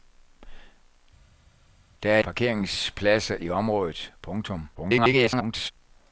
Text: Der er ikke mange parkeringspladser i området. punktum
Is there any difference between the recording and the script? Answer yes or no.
yes